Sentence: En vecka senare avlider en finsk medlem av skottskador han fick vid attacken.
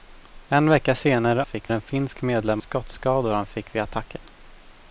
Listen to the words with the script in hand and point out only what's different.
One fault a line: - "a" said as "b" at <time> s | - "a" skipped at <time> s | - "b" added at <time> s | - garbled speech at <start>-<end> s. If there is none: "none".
- "avlider" said as "fick" at 1.4 s
- "av" skipped at 2.6 s